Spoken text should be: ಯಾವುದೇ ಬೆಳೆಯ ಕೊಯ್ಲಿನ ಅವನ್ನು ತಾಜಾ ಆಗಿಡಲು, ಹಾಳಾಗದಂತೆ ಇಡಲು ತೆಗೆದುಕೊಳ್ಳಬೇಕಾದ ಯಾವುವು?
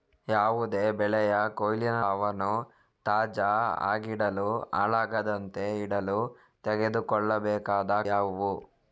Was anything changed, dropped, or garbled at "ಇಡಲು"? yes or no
no